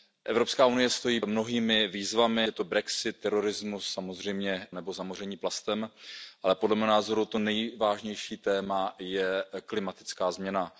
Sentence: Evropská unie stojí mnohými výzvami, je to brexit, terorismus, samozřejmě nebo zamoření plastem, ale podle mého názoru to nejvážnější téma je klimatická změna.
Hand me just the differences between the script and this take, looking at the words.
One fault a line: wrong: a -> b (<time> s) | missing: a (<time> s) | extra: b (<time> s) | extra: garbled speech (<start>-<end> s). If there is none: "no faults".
no faults